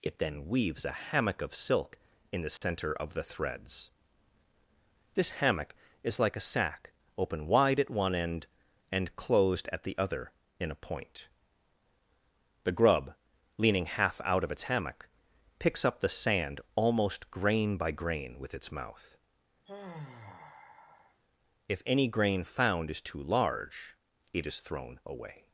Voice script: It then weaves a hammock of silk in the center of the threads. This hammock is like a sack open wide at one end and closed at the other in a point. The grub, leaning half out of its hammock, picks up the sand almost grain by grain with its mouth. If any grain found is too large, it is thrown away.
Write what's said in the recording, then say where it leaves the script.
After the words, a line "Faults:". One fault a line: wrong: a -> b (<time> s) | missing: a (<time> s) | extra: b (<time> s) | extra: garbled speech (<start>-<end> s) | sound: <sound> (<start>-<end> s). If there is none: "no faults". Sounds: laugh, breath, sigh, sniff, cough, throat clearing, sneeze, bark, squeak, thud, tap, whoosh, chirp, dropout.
It then weaves a hammock of silk in the center of the threads. This hammock is like a sack open wide at one end and closed at the other in a point. The grub, leaning half out of its hammock, picks up the sand almost grain by grain with its mouth. If any grain found is too large, it is thrown away.
Faults:
sound: dropout (2.6-2.6 s)
sound: sigh (19.7-21.2 s)